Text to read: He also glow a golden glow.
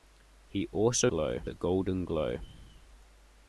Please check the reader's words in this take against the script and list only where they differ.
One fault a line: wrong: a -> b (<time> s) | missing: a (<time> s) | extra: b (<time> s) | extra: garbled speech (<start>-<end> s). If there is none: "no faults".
no faults